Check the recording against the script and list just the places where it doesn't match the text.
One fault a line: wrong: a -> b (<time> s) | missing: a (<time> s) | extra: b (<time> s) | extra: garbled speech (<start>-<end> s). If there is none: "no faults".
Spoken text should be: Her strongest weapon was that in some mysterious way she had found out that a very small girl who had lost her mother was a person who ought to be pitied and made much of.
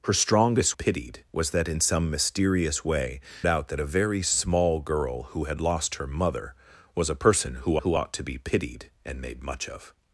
wrong: weapon -> pitied (0.7 s)
missing: she had found (3.2 s)
extra: who (7.8 s)